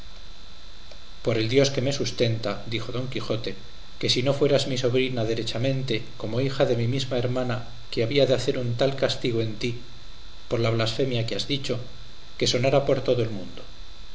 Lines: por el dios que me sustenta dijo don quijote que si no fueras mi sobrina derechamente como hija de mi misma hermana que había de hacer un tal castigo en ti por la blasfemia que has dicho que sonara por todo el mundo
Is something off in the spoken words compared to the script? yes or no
no